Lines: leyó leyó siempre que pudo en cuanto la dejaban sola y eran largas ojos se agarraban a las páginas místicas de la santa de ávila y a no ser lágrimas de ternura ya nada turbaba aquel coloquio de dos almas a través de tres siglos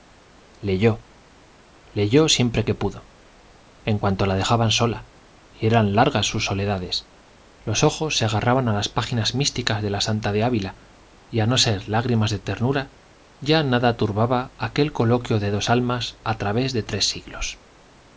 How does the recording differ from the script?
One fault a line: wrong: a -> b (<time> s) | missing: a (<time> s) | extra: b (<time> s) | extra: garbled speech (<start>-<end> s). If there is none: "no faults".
extra: sus soledades los (6.3 s)